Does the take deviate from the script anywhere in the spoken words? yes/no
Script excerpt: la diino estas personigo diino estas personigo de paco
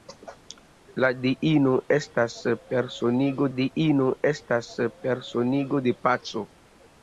no